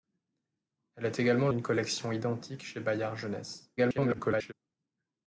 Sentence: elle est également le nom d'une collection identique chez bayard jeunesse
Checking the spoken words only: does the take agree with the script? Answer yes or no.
no